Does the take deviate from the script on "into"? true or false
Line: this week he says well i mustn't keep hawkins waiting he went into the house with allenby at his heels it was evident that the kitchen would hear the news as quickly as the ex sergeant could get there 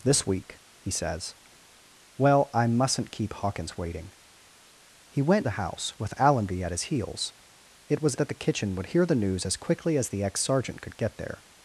true